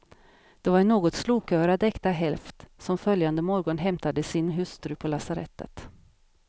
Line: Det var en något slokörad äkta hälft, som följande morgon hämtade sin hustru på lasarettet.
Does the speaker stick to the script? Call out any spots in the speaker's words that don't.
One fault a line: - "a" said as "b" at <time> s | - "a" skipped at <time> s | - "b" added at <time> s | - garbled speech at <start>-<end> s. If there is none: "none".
none